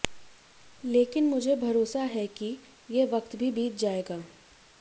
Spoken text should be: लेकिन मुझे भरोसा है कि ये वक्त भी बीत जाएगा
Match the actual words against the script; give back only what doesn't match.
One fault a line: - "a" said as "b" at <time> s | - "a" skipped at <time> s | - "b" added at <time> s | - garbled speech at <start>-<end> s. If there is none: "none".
none